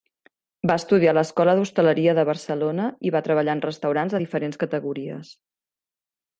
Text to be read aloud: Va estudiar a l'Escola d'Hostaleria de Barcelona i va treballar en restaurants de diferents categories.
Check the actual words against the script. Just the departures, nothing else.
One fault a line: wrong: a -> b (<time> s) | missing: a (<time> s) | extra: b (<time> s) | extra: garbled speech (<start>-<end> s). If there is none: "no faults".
no faults